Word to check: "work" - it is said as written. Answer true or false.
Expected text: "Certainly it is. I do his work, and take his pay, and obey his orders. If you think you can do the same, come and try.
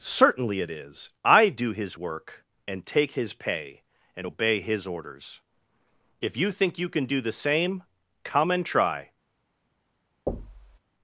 true